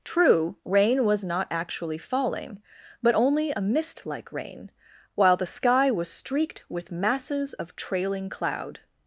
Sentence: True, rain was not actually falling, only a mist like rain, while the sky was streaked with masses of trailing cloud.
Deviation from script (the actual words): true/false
true